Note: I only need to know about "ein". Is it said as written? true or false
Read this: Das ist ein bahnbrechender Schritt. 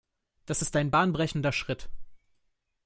true